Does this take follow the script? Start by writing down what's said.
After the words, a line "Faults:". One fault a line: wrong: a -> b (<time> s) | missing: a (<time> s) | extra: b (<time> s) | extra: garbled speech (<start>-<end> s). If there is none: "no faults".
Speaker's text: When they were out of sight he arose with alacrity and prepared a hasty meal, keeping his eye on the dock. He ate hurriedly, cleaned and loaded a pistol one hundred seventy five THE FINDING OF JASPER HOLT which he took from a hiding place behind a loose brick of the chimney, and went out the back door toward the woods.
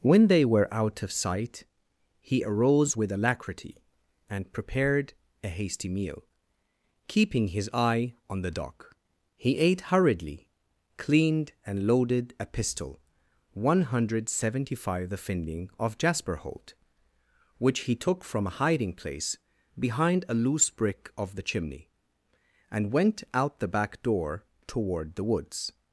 When they were out of sight he arose with alacrity and prepared a hasty meal, keeping his eye on the dock. He ate hurriedly, cleaned and loaded a pistol one hundred seventy five THE FINDING OF JASPER HOLT which he took from a hiding place behind a loose brick of the chimney, and went out the back door toward the woods.
Faults:
no faults